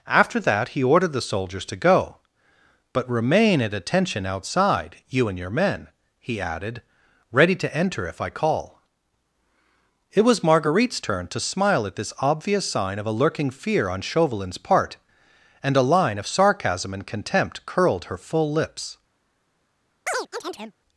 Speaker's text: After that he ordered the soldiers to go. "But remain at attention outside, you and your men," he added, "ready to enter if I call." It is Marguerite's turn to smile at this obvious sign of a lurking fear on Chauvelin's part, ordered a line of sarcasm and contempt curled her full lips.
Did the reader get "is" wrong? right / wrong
wrong